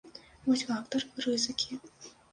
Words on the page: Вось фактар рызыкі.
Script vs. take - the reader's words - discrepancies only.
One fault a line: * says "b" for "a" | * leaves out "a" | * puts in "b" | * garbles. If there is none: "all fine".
all fine